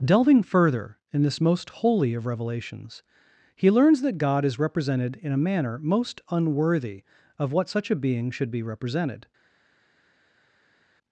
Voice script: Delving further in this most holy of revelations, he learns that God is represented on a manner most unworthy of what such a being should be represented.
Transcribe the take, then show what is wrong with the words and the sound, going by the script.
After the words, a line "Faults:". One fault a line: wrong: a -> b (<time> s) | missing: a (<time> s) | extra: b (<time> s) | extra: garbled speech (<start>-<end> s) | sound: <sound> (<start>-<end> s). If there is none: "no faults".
Delving further in this most holy of revelations, he learns that God is represented in a manner most unworthy of what such a being should be represented.
Faults:
wrong: on -> in (5.2 s)